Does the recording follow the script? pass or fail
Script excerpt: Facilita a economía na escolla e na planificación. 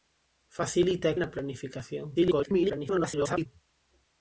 fail